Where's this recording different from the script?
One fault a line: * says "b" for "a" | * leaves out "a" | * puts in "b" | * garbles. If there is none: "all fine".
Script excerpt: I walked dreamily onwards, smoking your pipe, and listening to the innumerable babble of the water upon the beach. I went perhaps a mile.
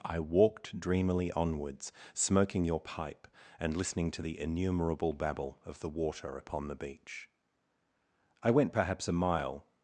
all fine